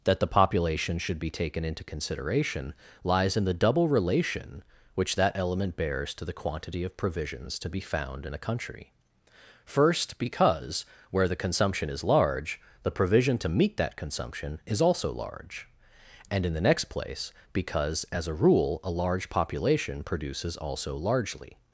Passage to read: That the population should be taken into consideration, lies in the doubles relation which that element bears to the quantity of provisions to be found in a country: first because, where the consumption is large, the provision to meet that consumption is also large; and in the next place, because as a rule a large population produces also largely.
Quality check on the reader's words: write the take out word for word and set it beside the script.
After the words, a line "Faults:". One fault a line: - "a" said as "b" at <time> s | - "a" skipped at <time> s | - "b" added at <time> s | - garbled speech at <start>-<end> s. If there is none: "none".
That the population should be taken into consideration, lies in the double relation which that element bears to the quantity of provisions to be found in a country: first because, where the consumption is large, the provision to meet that consumption is also large; and in the next place, because as a rule a large population produces also largely.
Faults:
- "doubles" said as "double" at 3.5 s